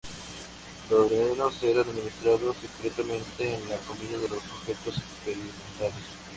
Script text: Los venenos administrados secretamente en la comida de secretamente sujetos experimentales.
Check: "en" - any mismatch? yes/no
no